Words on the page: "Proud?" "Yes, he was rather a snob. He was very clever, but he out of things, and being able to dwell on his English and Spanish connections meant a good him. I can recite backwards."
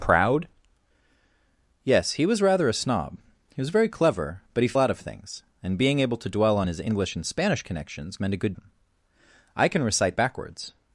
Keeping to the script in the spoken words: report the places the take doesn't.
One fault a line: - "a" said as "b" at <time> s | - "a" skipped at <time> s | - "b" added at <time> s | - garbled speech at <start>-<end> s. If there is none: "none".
none